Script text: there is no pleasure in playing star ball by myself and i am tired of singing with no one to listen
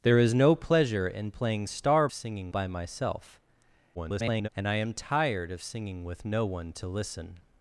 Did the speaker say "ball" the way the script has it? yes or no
no